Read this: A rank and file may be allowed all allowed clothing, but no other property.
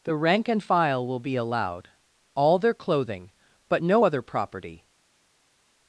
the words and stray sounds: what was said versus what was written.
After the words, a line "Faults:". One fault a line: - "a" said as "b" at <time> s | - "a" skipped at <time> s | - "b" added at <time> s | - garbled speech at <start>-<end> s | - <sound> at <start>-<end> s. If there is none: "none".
The rank and file will be allowed all their clothing, but no other property.
Faults:
- "A" said as "The" at 0.0 s
- "may" said as "will" at 1.0 s
- "allowed" said as "their" at 2.6 s